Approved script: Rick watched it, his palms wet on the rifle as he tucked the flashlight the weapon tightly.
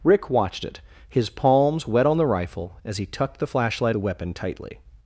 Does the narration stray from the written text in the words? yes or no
no